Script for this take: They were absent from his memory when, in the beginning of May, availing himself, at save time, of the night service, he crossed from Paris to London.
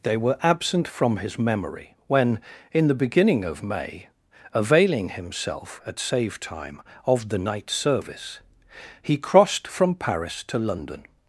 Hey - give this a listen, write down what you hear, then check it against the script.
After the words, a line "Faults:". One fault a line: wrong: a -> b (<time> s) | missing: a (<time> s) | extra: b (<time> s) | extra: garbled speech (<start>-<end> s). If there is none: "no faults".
They were absent from his memory when, in the beginning of May, availing himself, at save time, of the night service, he crossed from Paris to London.
Faults:
no faults